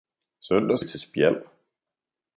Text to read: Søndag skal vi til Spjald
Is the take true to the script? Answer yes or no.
no